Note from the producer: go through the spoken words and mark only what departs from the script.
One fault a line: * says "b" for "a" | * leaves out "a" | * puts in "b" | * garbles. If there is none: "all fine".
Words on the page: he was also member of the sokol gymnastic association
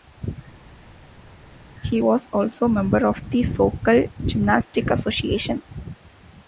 all fine